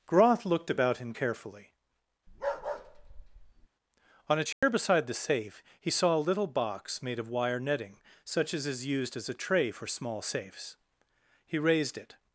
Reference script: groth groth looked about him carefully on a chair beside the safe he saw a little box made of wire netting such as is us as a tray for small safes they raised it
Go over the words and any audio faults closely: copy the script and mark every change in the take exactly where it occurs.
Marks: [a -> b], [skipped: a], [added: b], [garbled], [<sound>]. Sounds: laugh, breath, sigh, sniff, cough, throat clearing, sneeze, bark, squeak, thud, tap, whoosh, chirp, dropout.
groth [skipped: groth] looked about him carefully [bark] on a chair [dropout] beside the safe he saw a little box made of wire netting such as is [us -> used] as a tray for small safes [they -> he] raised it